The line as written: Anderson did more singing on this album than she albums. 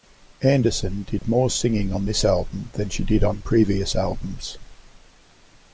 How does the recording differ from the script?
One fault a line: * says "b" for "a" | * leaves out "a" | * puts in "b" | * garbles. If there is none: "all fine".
* puts in "did on previous"